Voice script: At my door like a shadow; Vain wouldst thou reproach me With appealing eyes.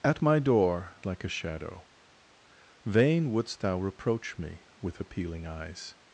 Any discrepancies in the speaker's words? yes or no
no